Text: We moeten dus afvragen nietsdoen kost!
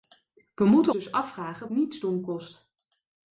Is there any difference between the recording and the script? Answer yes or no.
no